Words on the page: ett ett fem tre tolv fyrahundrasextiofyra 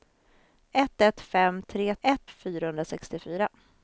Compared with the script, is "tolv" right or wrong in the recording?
wrong